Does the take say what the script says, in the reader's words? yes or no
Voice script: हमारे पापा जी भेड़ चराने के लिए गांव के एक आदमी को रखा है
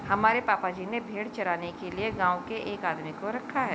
no